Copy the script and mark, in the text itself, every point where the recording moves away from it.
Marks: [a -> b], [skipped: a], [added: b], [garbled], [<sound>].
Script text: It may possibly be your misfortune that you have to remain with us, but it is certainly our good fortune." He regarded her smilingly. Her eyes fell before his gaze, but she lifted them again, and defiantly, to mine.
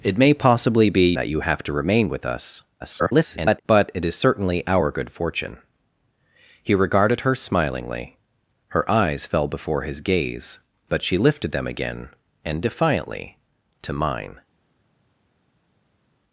It may possibly be [skipped: your misfortune] that you have to remain with us, [garbled] but it is certainly our good fortune." He regarded her smilingly. Her eyes fell before his gaze, but she lifted them again, and defiantly, to mine.